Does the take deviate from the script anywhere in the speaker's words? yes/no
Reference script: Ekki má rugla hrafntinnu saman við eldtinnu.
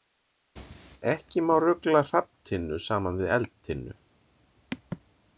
no